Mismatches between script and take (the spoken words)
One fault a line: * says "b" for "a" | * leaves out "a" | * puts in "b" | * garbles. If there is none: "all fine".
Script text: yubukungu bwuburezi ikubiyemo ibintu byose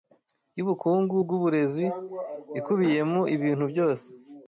all fine